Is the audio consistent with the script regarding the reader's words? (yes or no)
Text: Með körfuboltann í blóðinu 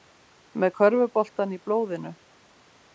yes